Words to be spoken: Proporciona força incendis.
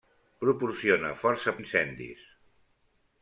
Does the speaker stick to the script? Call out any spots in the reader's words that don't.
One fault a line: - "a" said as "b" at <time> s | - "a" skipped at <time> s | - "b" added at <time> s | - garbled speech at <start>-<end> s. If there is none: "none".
none